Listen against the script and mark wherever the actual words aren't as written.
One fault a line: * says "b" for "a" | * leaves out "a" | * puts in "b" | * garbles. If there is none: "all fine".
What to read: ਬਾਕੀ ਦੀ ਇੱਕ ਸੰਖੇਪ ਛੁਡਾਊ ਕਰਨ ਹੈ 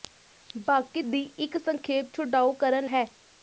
all fine